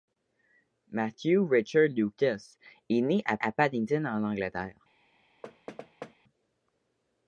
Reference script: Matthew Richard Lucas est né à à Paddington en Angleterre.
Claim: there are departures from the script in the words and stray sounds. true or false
true